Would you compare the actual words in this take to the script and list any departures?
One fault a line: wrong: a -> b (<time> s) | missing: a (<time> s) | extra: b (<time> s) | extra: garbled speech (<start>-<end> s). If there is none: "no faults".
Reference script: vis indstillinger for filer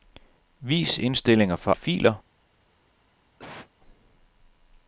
no faults